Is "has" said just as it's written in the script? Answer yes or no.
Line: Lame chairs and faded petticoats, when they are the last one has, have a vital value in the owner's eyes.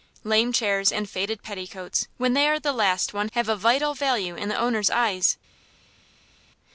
no